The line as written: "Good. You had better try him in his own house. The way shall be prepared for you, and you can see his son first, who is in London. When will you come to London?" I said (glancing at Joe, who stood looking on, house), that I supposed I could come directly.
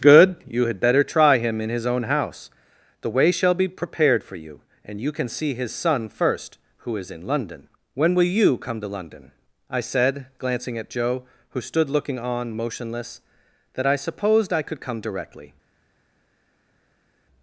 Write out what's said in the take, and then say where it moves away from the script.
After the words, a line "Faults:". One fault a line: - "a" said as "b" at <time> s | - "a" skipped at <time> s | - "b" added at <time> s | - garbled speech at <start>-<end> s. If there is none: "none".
"Good. You had better try him in his own house. The way shall be prepared for you, and you can see his son first, who is in London. When will you come to London?" I said (glancing at Joe, who stood looking on, motionless), that I supposed I could come directly.
Faults:
- "house" said as "motionless" at 12.6 s